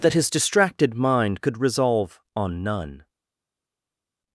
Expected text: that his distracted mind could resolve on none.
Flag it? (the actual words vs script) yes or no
no